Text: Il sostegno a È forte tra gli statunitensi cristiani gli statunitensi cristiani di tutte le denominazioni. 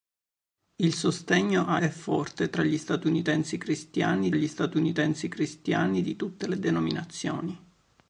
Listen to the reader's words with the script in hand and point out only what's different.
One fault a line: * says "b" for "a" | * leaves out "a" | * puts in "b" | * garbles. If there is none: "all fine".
all fine